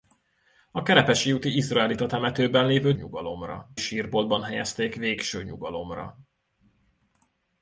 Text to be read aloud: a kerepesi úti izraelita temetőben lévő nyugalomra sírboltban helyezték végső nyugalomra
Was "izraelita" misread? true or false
false